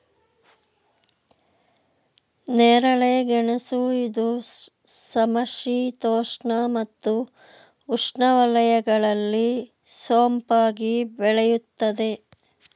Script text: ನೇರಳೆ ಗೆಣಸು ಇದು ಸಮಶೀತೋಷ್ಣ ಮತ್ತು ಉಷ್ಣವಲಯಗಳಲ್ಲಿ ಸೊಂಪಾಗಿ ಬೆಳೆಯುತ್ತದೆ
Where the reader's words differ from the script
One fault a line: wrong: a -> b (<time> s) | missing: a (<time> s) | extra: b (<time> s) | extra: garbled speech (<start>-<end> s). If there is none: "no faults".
no faults